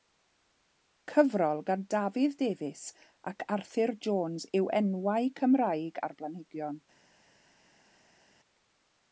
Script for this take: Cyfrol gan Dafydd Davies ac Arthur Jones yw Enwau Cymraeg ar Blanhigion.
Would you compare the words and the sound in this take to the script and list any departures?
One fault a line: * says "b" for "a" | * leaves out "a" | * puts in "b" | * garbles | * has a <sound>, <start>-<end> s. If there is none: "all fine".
all fine